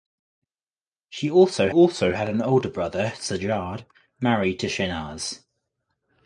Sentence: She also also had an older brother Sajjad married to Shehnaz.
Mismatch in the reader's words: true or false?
false